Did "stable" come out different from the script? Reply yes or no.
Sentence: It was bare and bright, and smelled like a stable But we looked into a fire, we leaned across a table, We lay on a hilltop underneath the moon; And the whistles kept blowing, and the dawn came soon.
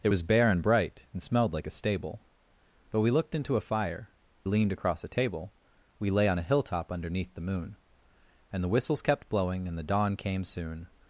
no